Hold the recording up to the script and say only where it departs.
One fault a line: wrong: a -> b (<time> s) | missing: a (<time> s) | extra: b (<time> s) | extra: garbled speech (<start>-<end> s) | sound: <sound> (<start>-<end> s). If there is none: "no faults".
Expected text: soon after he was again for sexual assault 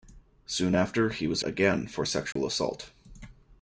sound: dropout (2.3-2.4 s)